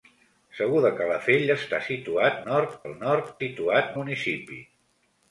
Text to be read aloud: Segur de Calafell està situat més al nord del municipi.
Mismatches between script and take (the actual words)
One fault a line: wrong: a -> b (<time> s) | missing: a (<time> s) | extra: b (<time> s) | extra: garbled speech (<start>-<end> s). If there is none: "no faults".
wrong: més -> nord (2.5 s)
wrong: del -> situat (3.4 s)